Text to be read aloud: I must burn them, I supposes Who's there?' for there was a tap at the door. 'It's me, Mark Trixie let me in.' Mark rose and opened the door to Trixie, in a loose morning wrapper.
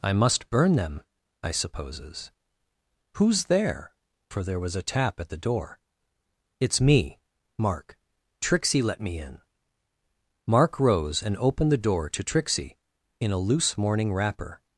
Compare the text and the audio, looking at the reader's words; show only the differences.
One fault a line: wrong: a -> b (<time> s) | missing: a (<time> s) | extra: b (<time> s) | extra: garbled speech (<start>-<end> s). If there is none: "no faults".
no faults